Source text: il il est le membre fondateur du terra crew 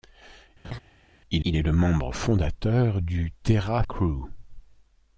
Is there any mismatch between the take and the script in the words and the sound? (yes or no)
yes